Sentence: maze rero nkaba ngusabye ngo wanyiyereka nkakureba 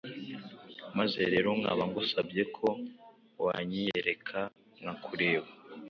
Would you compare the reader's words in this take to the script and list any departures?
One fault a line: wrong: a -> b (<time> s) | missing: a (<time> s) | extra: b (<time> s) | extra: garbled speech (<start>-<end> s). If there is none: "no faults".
wrong: ngo -> ko (2.6 s)